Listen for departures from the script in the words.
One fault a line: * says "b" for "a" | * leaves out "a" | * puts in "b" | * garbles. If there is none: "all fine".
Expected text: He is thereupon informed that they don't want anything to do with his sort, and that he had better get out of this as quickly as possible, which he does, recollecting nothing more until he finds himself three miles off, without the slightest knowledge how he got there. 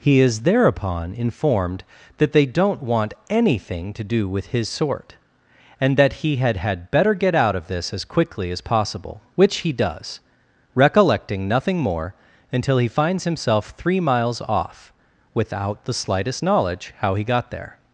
* puts in "had"